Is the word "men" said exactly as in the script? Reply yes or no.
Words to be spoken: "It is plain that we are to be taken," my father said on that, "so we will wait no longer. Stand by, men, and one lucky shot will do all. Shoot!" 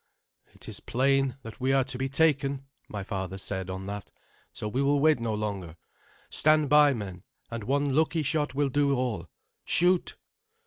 yes